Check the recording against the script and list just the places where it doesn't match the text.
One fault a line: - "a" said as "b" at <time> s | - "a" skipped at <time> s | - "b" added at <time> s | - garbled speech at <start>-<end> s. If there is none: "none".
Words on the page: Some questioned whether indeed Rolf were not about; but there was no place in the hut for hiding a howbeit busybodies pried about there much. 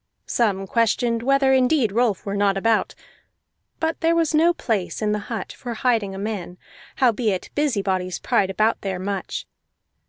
- "man" added at 6.2 s